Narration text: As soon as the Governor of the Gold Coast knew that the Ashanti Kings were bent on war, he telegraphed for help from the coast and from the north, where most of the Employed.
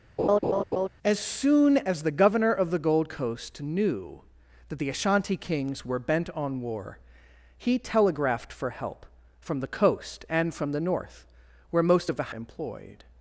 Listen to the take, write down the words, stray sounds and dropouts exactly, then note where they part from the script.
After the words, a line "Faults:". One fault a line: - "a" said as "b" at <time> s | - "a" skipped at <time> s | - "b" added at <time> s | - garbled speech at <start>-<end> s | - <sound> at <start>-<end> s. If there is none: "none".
As soon as the Governor of the Gold Coast knew that the Ashanti Kings were bent on war, he telegraphed for help from the coast and from the north, where most of the Employed.
Faults:
- laugh at 0.2-0.9 s